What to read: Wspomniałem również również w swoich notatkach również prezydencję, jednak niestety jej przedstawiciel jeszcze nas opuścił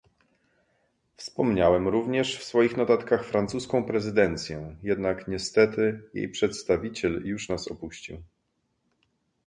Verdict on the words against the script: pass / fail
fail